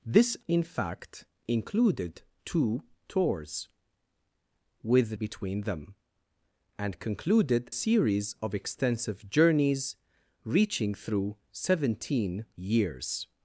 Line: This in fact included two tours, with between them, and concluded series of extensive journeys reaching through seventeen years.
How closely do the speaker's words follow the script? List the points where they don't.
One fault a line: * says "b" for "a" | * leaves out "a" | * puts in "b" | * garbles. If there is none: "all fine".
all fine